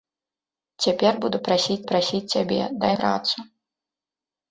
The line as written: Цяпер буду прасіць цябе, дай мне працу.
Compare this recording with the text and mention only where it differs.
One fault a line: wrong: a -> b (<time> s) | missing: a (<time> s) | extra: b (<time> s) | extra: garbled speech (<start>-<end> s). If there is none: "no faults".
extra: прасіць (1.9 s)
missing: мне (2.9 s)